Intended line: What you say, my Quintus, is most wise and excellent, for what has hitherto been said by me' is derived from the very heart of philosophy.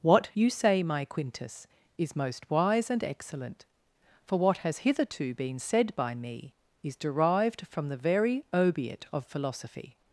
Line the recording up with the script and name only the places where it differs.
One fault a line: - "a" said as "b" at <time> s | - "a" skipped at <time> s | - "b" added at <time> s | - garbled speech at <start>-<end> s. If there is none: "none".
- "heart" said as "obiit" at 8.5 s